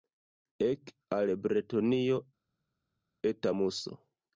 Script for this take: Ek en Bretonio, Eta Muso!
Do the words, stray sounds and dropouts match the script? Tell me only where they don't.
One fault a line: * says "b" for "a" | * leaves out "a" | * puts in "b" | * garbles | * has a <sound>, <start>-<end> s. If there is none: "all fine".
* says "al" for "en"